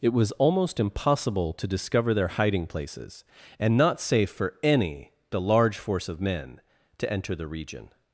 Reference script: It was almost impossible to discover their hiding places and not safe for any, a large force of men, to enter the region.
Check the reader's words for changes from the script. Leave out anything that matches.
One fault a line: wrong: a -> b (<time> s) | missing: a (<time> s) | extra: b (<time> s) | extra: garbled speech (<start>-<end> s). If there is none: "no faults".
no faults